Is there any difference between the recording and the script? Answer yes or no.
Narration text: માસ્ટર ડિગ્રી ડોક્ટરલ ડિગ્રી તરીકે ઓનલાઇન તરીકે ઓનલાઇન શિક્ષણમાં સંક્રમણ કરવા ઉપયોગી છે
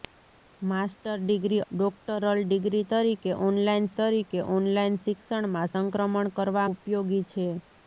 no